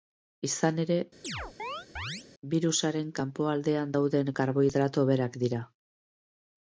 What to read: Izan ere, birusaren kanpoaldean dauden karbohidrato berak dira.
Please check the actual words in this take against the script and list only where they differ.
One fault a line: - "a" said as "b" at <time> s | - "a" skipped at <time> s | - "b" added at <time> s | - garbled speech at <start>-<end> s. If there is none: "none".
none